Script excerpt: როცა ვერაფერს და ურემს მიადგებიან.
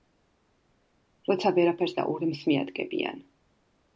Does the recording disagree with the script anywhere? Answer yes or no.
no